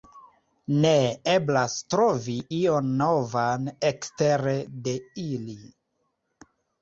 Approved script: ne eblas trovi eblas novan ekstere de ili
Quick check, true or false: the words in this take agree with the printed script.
false